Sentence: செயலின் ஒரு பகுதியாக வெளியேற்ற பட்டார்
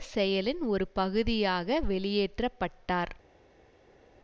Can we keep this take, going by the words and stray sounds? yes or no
yes